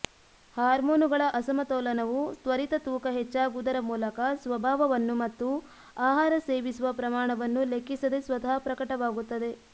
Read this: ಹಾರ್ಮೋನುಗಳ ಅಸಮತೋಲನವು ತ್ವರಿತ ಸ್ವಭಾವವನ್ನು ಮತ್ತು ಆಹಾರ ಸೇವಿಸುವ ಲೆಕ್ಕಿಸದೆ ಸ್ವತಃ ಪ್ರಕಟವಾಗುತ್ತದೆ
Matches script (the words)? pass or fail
fail